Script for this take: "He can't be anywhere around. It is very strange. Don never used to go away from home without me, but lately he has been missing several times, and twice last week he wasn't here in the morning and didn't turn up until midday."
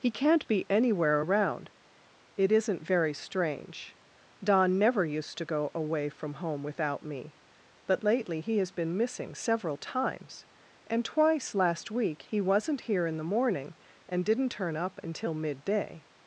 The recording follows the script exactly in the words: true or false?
false